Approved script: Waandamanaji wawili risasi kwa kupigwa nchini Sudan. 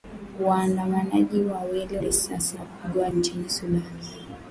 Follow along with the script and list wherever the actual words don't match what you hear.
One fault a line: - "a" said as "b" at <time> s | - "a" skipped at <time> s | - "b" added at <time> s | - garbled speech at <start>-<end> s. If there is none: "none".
none